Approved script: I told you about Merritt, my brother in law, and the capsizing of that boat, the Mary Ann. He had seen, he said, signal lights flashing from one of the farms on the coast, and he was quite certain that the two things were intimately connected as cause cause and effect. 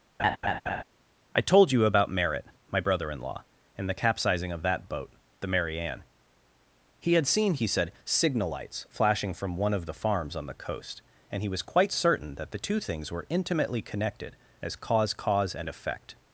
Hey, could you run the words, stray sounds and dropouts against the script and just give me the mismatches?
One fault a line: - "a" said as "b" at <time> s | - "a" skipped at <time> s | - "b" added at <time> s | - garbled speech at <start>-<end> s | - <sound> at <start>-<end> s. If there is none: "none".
- laugh at 0.2-0.8 s